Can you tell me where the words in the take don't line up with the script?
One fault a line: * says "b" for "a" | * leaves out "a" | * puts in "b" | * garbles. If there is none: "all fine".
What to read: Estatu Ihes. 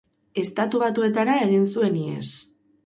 * puts in "Batuetara egin zuen"